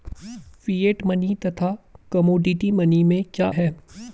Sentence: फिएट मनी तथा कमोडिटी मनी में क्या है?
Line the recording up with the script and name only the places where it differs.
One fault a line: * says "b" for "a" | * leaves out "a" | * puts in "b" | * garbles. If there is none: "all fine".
all fine